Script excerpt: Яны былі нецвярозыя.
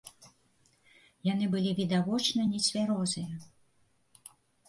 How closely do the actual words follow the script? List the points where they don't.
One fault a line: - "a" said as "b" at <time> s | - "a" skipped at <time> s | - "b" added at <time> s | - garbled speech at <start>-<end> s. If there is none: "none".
- "відавочна" added at 1.8 s